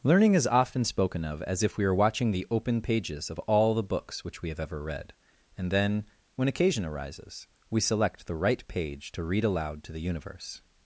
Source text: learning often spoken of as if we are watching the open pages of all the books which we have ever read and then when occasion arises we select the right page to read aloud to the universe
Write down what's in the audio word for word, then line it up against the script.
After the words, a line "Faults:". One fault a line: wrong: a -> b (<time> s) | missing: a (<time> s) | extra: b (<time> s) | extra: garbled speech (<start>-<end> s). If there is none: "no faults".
learning is often spoken of as if we are watching the open pages of all the books which we have ever read and then when occasion arises we select the right page to read aloud to the universe
Faults:
extra: is (0.3 s)